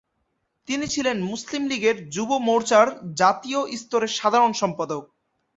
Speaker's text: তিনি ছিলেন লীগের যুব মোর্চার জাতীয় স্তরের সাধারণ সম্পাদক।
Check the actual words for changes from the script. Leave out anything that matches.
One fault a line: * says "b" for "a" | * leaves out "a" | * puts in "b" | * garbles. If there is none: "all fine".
* puts in "মুসলিম"